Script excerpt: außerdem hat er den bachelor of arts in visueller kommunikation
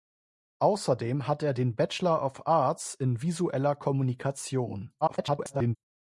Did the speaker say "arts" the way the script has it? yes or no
yes